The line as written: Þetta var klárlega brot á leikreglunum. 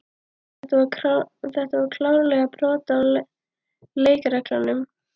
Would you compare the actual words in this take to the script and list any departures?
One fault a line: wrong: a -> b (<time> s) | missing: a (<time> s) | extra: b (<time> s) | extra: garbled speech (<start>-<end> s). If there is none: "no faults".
no faults